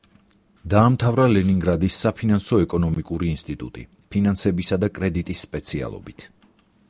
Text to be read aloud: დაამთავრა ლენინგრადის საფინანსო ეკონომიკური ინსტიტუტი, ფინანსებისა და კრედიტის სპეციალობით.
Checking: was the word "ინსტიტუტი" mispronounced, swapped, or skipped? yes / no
no